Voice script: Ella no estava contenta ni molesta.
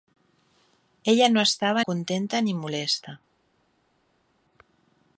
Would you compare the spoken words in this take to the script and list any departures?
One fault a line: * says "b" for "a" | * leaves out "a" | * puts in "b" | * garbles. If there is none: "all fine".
all fine